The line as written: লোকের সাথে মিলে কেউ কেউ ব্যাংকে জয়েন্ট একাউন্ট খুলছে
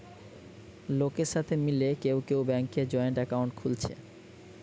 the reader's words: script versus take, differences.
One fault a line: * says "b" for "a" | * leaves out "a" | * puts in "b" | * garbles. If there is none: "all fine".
all fine